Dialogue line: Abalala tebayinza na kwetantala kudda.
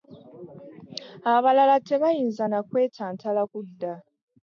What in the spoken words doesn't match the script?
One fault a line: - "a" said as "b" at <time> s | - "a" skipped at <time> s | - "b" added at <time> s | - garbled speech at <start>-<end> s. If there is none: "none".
none